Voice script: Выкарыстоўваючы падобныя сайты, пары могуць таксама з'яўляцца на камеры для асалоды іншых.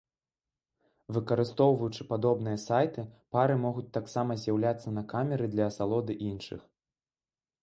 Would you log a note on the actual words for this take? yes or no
no